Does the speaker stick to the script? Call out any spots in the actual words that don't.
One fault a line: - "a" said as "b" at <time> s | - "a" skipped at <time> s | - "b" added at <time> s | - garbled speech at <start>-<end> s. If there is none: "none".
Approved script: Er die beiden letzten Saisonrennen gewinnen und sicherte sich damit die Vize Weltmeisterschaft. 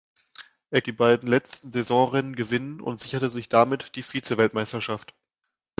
none